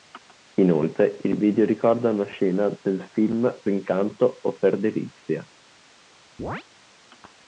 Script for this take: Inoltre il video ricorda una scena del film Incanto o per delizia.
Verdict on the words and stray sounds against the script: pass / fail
fail